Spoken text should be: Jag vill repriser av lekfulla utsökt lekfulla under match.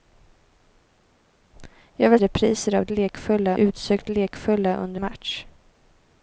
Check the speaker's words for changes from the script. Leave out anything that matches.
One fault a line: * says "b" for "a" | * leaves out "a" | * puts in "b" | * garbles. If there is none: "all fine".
all fine